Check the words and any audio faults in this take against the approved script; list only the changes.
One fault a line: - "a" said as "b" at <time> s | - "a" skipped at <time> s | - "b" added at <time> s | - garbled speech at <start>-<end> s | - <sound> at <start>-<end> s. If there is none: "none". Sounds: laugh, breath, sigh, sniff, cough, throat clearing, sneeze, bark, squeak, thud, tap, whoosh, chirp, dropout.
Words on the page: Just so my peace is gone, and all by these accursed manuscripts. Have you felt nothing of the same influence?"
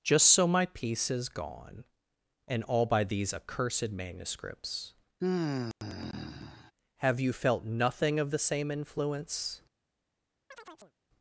- sigh at 5.2-6.7 s
- chirp at 10.5-10.9 s